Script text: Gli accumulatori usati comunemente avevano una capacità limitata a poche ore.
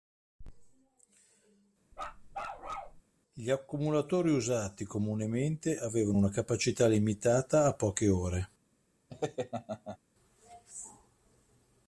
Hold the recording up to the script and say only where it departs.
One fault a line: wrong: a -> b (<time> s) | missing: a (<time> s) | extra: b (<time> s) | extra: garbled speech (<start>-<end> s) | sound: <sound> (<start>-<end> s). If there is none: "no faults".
sound: bark (1.9-3.0 s)
sound: laugh (9.1-10.0 s)